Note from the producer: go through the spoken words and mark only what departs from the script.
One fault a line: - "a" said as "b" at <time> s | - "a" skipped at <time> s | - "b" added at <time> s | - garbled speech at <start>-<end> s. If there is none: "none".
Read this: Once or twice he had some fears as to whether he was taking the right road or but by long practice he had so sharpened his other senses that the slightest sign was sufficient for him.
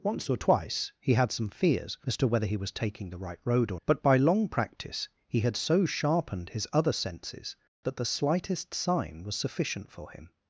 none